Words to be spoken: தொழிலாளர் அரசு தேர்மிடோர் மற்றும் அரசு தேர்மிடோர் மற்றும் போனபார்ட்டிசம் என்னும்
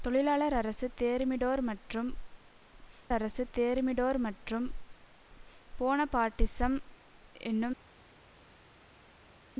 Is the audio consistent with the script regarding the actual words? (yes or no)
yes